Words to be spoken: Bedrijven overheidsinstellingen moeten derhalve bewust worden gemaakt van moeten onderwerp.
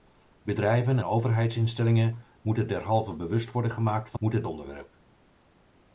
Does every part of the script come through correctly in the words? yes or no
yes